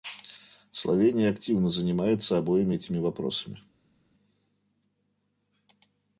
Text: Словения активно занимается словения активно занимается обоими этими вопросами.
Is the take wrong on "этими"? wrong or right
right